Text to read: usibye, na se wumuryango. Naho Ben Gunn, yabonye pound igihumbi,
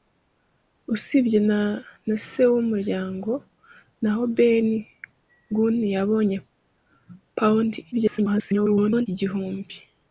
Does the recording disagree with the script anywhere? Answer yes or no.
yes